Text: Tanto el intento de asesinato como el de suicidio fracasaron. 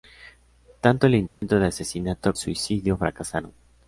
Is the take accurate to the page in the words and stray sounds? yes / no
no